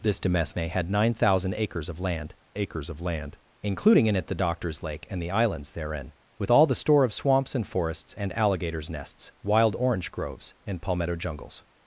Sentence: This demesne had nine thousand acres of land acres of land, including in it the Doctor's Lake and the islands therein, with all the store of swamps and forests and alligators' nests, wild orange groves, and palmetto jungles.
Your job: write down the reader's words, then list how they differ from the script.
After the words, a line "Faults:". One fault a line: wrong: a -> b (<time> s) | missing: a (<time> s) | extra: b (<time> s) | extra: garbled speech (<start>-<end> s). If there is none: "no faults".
This demesne had nine thousand acres of land acres of land, including in it the Doctor's Lake and the islands therein, with all the store of swamps and forests and alligators' nests, wild orange groves, and palmetto jungles.
Faults:
no faults